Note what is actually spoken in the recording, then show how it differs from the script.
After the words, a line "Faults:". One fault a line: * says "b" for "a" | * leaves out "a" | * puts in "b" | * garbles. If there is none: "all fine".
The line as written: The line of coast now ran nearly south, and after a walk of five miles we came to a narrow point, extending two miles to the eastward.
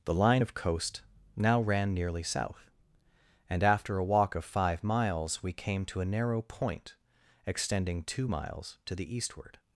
The line of coast now ran nearly south, and after a walk of five miles we came to a narrow point, extending two miles to the eastward.
Faults:
all fine